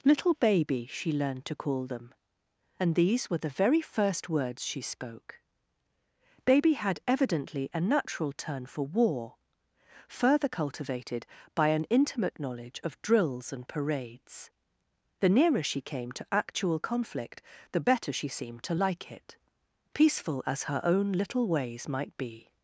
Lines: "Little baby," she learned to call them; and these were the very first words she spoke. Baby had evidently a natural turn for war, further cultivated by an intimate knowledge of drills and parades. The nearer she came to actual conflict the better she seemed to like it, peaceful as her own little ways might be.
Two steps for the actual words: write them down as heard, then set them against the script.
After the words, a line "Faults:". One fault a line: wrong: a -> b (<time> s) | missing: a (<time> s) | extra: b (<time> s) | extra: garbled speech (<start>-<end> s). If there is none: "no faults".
"Little baby," she learned to call them; and these were the very first words she spoke. Baby had evidently a natural turn for war, further cultivated by an intimate knowledge of drills and parades. The nearer she came to actual conflict the better she seemed to like it, peaceful as her own little ways might be.
Faults:
no faults